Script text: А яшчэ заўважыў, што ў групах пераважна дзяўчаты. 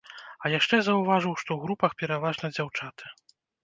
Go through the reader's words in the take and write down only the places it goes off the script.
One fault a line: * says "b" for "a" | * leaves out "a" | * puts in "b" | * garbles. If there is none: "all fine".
all fine